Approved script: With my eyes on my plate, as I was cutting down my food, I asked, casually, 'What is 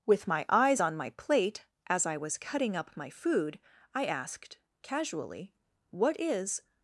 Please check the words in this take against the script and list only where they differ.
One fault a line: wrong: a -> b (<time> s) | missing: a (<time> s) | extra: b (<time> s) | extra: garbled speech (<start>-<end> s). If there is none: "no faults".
wrong: down -> up (2.8 s)